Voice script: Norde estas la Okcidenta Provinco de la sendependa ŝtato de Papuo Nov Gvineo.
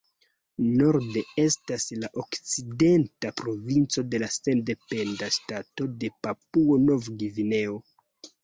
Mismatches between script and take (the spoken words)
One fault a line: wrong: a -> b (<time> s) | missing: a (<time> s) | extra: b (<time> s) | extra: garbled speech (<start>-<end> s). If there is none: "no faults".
no faults